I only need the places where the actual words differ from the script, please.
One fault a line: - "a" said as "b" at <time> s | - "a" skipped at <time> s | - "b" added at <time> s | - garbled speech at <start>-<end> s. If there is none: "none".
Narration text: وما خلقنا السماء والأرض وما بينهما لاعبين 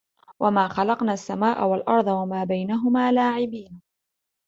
none